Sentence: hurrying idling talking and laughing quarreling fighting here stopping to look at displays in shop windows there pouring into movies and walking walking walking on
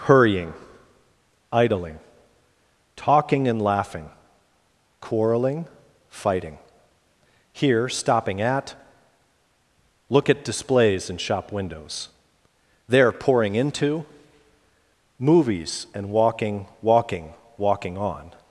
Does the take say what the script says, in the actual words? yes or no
no